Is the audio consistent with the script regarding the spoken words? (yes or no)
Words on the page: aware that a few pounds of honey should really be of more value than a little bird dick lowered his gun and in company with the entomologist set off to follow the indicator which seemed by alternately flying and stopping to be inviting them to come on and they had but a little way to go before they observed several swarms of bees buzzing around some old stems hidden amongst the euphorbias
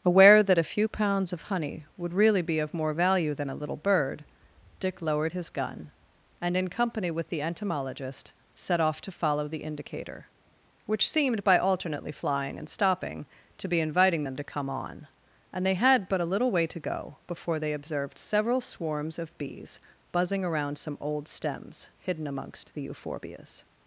no